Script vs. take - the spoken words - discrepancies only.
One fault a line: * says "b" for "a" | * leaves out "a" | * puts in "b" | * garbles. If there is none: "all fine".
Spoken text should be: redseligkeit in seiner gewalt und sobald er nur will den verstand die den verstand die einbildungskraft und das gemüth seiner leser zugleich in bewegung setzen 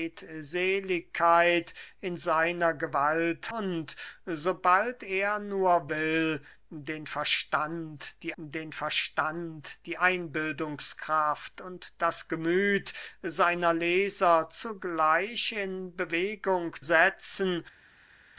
all fine